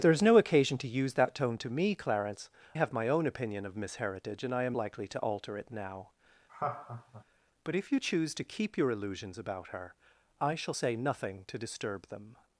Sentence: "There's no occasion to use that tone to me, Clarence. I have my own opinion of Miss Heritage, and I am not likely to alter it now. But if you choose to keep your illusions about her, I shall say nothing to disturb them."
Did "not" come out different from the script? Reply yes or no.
yes